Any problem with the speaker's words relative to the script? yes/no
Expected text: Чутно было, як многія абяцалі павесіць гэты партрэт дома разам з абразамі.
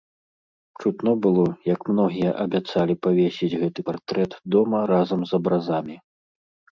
no